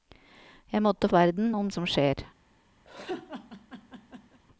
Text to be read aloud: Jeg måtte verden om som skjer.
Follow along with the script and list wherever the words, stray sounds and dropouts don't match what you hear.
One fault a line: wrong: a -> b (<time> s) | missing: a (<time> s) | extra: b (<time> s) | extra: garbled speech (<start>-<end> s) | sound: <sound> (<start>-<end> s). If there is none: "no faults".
sound: laugh (2.8-4.4 s)